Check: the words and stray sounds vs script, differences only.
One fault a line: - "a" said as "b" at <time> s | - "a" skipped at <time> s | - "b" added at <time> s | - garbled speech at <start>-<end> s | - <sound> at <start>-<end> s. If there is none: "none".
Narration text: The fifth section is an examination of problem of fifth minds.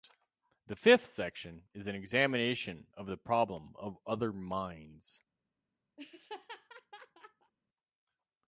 - "the" added at 3.0 s
- "fifth" said as "other" at 4.1 s
- laugh at 6.0-7.5 s